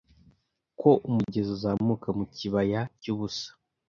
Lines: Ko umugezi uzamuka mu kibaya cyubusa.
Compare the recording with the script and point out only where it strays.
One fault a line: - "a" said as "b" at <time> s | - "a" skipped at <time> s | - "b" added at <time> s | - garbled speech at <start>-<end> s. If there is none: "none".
none